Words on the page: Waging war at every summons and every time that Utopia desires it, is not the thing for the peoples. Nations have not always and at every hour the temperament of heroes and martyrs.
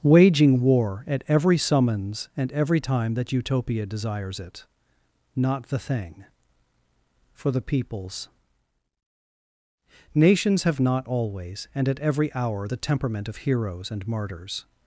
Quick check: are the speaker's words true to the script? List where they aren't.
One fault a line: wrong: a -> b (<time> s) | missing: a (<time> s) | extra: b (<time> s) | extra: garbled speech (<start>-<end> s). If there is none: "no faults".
missing: is (4.7 s)